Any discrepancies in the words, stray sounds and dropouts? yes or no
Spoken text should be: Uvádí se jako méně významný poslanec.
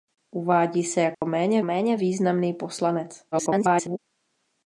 yes